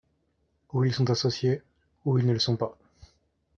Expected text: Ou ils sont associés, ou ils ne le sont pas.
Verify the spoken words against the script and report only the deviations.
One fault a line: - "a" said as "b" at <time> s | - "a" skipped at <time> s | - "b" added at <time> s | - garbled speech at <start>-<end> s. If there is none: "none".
none